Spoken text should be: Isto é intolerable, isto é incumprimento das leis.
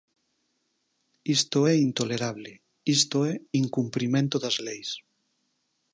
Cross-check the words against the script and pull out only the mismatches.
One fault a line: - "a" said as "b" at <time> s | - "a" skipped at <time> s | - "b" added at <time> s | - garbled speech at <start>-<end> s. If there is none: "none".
none